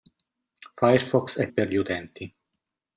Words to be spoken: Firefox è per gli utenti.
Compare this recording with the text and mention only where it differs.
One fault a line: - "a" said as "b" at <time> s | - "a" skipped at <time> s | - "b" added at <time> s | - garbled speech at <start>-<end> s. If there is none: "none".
none